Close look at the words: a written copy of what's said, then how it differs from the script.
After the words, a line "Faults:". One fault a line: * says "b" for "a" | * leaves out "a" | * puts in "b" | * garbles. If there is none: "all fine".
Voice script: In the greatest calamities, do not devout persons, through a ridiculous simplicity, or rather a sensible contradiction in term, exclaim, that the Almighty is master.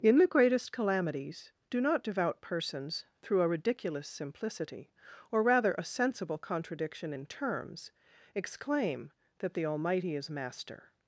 In the greatest calamities, do not devout persons, through a ridiculous simplicity, or rather a sensible contradiction in terms, exclaim, that the Almighty is master.
Faults:
* says "terms" for "term"